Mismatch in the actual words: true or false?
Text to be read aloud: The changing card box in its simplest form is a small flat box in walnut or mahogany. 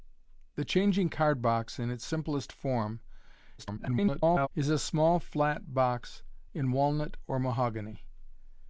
true